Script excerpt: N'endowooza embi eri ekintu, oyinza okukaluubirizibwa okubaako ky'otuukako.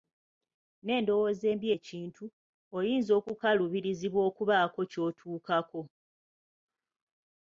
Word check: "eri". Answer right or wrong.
wrong